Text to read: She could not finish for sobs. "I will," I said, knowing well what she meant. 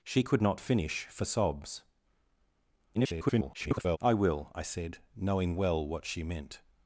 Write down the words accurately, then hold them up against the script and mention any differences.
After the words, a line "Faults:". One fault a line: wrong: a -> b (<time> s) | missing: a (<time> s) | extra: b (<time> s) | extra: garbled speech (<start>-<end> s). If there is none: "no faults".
She could not finish for sobs. [garbled] "I will," I said, knowing well what she meant.
Faults:
extra: garbled speech (2.9-4.0 s)